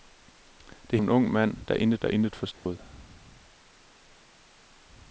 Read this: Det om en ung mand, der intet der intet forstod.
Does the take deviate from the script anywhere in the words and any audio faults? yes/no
yes